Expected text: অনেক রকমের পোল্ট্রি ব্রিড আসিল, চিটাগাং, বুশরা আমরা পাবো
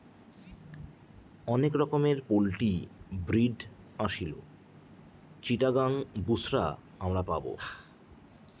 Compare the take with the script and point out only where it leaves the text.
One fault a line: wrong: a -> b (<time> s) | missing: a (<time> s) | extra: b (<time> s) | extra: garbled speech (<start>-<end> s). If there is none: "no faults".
no faults